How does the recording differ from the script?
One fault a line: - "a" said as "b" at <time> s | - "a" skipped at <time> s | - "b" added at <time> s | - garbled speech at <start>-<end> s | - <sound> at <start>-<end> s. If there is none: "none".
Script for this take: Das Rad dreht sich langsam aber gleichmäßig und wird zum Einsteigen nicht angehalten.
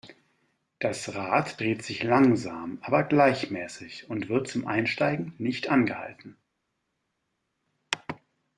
none